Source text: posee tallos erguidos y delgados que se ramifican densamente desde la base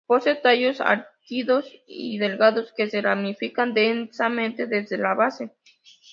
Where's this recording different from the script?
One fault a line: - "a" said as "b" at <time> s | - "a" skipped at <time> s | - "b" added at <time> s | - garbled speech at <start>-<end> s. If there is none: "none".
none